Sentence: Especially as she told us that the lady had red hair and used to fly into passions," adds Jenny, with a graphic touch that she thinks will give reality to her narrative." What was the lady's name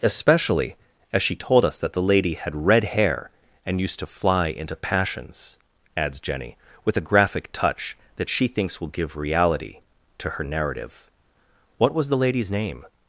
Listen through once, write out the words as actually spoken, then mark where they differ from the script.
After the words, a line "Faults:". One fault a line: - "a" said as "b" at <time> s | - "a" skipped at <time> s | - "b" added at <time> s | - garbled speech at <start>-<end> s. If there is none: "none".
Especially as she told us that the lady had red hair and used to fly into passions," adds Jenny, with a graphic touch that she thinks will give reality to her narrative." What was the lady's name
Faults:
none